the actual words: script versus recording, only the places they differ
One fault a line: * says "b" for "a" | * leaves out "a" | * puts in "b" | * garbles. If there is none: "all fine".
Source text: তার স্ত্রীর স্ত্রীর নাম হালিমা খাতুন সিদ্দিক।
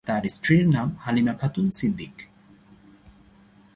* leaves out "স্ত্রীর"